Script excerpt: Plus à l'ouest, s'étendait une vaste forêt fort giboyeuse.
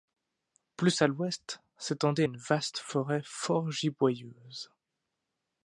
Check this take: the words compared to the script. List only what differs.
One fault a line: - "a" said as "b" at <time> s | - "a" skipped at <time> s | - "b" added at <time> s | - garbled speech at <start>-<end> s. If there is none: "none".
none